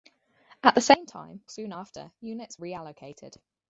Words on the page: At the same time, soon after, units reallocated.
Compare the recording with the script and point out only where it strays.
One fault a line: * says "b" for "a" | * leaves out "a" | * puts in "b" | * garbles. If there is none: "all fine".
all fine